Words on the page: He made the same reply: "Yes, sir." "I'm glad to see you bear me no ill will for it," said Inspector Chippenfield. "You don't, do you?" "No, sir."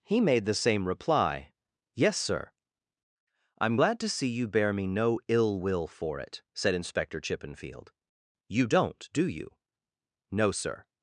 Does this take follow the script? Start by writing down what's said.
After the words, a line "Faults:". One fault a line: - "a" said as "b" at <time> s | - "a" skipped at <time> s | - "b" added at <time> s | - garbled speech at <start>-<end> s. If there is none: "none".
He made the same reply: "Yes, sir." "I'm glad to see you bear me no ill will for it," said Inspector Chippenfield. "You don't, do you?" "No, sir."
Faults:
none